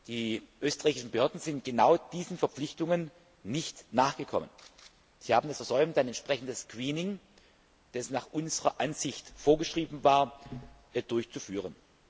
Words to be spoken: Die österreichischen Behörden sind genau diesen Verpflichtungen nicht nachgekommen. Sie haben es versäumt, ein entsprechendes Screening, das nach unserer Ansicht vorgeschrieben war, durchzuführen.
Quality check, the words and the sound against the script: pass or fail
pass